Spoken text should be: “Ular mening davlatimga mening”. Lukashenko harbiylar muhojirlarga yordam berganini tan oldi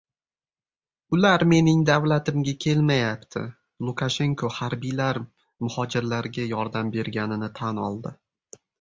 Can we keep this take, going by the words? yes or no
no